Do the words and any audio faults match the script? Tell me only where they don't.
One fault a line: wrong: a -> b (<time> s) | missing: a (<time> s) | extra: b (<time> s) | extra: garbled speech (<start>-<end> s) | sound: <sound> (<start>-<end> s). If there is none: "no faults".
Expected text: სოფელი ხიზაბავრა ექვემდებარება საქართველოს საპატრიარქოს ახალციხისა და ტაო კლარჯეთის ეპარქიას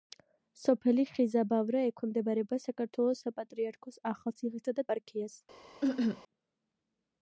missing: ტაო კლარჯეთის (4.9 s)
sound: cough (5.8-6.2 s)